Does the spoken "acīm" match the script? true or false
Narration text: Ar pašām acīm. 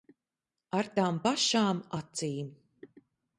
true